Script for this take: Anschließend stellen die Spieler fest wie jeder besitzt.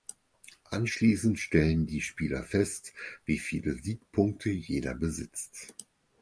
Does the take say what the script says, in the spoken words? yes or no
no